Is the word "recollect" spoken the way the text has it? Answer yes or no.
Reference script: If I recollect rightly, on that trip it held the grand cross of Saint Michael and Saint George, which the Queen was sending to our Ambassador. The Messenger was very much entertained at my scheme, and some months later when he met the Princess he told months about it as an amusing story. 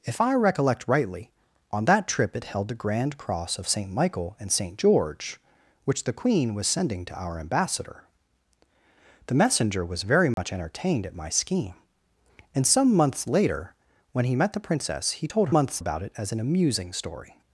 yes